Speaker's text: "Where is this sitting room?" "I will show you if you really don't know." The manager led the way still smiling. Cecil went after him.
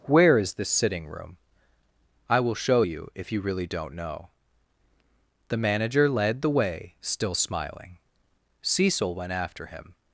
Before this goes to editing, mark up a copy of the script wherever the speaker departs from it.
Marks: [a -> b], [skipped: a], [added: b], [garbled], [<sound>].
"Where is this sitting room?" "I will show you if you really don't know." The manager led the way still smiling. Cecil went after him.